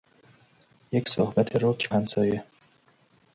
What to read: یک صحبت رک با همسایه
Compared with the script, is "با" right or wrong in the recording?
wrong